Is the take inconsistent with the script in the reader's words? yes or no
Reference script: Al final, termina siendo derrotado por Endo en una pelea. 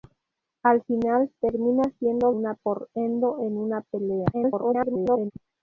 yes